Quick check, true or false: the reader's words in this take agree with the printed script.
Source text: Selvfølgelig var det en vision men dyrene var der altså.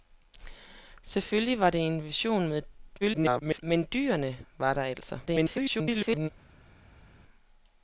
false